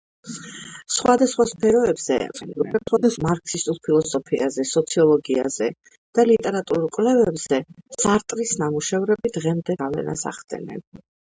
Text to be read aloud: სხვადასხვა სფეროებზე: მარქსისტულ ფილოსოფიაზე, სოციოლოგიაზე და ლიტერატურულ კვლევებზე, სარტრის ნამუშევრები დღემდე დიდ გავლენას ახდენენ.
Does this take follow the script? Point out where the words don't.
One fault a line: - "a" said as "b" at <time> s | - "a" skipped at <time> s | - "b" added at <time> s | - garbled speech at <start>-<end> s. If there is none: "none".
- garbled speech at 2.3-3.2 s
- "დიდ" skipped at 9.8 s